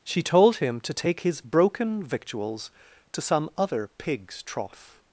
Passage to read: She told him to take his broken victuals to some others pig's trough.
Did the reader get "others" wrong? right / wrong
wrong